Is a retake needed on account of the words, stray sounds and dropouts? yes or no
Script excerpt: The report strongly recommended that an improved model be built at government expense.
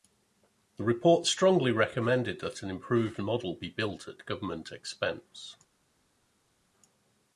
no